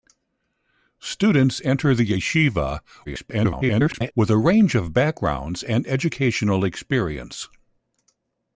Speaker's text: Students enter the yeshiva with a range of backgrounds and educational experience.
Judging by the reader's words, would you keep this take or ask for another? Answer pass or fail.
fail